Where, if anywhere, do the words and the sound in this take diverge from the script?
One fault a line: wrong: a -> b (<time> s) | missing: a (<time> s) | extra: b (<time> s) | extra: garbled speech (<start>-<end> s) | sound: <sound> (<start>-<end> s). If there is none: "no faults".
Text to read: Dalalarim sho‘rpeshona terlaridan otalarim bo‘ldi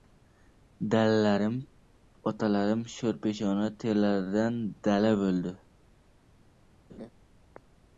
extra: otalarim (2.3 s)
wrong: otalarim -> dala (4.9 s)
sound: laugh (6.9-7.1 s)